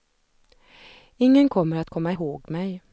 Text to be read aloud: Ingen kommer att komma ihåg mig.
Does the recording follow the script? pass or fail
pass